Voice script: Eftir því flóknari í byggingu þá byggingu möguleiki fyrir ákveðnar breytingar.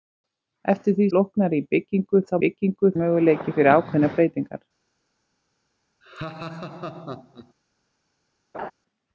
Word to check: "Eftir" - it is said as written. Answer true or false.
true